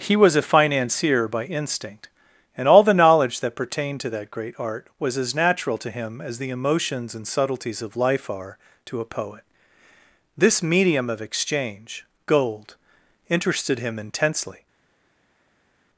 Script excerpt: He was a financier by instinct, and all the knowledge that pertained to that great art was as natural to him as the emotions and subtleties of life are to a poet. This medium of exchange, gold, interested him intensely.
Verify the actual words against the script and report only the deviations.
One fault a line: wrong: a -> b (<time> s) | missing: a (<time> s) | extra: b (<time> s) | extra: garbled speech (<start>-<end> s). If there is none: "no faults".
no faults